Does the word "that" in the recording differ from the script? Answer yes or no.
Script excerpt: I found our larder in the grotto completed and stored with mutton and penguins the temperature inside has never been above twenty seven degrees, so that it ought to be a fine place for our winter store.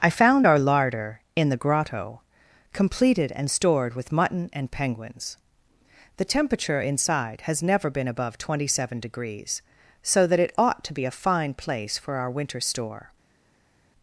no